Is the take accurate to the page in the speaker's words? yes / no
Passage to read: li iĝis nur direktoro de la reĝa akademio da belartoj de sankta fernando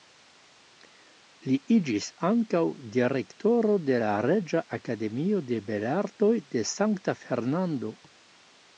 no